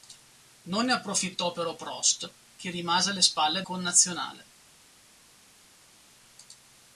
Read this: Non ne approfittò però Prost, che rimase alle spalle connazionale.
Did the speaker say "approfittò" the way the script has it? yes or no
yes